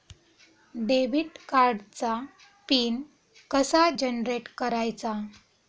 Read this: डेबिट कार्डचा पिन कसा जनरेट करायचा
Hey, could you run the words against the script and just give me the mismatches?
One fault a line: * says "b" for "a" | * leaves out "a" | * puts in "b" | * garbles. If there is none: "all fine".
all fine